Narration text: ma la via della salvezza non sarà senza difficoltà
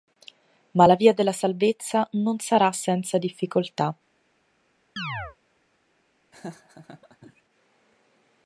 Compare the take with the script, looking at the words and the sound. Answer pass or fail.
fail